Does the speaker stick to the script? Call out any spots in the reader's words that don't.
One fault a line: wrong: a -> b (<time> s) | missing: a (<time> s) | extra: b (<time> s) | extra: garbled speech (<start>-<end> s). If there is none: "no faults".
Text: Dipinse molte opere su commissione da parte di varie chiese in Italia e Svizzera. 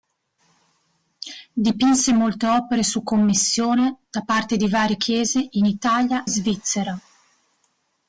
missing: e (6.3 s)